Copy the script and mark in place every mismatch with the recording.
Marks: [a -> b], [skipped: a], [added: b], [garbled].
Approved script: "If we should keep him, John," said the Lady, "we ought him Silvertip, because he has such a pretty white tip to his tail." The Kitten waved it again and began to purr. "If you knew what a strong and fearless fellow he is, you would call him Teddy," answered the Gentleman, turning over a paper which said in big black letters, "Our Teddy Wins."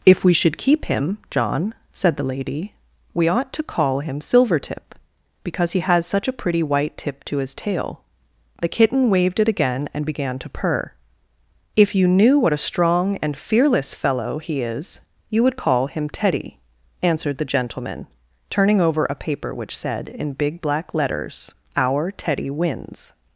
"If we should keep him, John," said the Lady, "we ought [added: to call] him Silvertip, because he has such a pretty white tip to his tail." The Kitten waved it again and began to purr. "If you knew what a strong and fearless fellow he is, you would call him Teddy," answered the Gentleman, turning over a paper which said in big black letters, "Our Teddy Wins."